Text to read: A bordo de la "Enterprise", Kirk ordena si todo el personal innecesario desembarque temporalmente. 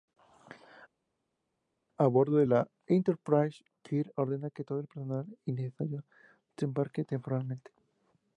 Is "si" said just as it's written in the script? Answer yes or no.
no